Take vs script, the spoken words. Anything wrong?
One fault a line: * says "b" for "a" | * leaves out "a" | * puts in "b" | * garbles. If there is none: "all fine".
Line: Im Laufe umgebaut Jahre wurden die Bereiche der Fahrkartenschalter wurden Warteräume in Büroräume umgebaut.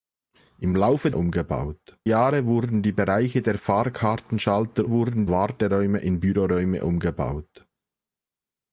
all fine